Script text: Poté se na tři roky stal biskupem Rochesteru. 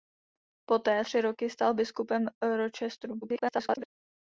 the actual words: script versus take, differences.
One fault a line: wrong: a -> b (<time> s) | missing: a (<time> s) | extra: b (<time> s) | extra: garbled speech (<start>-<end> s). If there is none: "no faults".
missing: se na (1.1 s)
extra: garbled speech (3.2-3.9 s)